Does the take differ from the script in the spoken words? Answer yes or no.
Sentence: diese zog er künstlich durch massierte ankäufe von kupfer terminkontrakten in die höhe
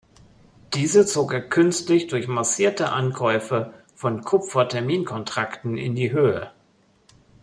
no